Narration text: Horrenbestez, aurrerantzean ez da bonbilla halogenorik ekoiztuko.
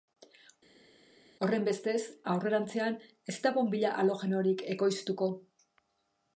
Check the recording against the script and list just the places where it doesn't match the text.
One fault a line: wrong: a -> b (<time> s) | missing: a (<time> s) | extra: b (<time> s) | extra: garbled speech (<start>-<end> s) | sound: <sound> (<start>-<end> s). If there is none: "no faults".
no faults